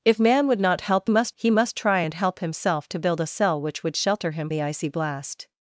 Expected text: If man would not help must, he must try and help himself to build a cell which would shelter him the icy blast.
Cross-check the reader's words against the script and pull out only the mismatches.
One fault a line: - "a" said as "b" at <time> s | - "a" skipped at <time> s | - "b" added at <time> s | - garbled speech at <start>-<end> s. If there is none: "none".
none